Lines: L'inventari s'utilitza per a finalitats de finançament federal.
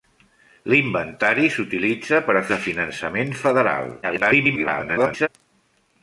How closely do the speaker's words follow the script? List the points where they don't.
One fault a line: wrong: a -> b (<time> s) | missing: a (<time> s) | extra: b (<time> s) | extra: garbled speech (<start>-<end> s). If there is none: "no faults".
missing: finalitats (2.4 s)
extra: garbled speech (4.0-5.3 s)